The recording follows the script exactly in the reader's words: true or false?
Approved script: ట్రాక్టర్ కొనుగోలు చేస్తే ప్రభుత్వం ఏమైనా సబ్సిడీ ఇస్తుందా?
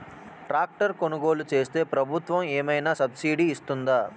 true